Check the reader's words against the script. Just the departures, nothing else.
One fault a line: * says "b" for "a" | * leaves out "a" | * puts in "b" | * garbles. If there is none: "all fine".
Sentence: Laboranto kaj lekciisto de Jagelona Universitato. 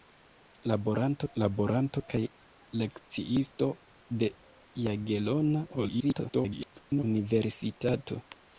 * puts in "laboranto"
* garbles